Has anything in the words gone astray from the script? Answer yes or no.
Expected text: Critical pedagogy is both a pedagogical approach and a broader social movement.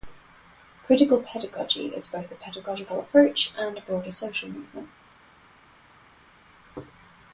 no